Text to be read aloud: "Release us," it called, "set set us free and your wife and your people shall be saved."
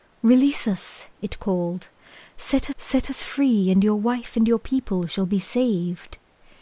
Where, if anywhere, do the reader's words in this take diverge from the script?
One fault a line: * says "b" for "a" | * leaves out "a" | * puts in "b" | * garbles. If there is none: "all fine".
all fine